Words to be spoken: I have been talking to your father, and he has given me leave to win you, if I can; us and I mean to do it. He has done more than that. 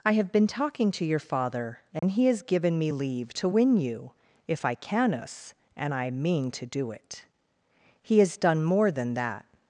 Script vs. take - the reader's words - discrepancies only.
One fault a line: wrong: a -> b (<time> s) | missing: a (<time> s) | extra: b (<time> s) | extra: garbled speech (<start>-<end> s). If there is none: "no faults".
no faults